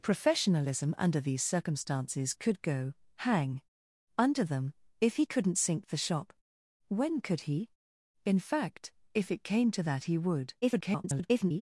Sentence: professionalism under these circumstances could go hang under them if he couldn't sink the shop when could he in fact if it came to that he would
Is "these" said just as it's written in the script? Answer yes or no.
yes